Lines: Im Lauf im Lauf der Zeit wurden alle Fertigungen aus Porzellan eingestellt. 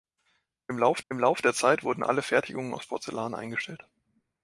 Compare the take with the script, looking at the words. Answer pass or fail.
pass